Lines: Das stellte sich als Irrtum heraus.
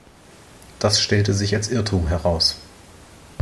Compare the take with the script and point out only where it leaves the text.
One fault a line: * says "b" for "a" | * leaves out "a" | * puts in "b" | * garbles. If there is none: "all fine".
all fine